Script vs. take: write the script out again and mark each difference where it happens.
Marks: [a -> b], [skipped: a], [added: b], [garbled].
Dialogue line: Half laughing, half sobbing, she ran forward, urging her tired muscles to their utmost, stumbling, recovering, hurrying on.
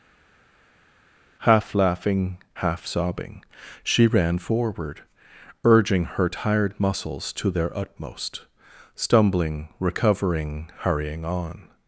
Half laughing, half sobbing, she ran forward, urging her tired muscles to their utmost, stumbling, recovering, hurrying on.